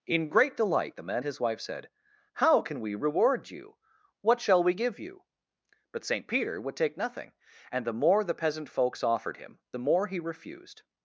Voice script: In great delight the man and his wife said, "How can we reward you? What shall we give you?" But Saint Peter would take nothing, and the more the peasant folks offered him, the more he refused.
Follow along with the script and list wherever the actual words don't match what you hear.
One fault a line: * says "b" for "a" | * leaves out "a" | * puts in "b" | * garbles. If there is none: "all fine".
* leaves out "and"